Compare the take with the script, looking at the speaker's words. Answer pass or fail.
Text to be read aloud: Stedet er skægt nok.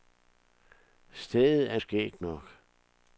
pass